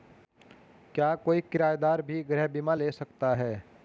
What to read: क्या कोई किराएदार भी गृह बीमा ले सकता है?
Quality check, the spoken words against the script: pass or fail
pass